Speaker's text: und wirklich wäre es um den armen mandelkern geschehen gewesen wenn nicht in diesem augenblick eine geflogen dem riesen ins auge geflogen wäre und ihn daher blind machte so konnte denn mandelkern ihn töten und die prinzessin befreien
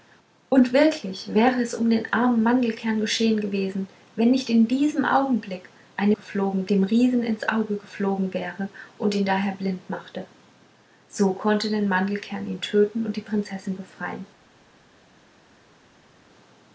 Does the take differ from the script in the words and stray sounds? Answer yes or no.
no